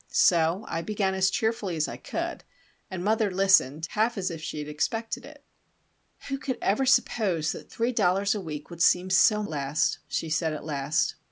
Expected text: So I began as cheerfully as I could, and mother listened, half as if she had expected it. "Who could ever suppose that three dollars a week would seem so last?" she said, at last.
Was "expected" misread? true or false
false